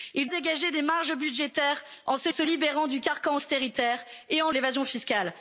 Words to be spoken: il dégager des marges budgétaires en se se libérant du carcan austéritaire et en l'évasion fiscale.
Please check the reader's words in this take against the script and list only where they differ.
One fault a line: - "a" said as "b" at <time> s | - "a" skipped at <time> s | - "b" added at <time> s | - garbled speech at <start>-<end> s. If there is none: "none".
none